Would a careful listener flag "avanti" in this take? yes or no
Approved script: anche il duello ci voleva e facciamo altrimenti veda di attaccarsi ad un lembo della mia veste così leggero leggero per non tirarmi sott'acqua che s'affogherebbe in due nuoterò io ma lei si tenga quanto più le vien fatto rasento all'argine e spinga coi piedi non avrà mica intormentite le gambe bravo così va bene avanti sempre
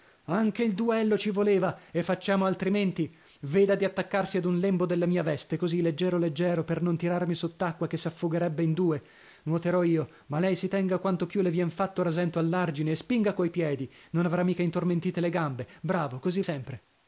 yes